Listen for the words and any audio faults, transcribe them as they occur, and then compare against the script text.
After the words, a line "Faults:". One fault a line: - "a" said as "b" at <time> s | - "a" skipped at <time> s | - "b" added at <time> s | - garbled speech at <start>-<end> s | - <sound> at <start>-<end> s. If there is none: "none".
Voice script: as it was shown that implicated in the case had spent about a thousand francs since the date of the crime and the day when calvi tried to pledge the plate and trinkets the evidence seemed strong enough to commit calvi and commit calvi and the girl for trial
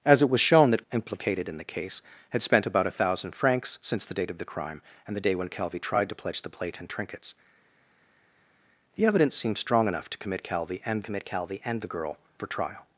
as it was shown that implicated in the case had spent about a thousand francs since the date of the crime and the day when calvi tried to pledge the plate and trinkets the evidence seemed strong enough to commit calvi and commit calvi and the girl for trial
Faults:
none